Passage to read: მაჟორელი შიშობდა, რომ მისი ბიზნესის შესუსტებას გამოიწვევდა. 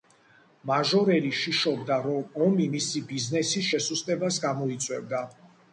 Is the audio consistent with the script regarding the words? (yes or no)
no